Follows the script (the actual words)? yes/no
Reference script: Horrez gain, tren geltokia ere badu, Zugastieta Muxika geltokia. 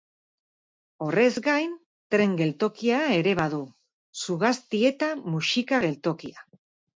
yes